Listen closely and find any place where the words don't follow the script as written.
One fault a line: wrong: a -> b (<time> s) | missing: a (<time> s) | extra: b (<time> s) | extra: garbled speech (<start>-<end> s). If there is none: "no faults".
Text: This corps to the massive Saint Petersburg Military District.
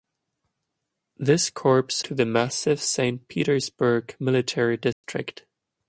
no faults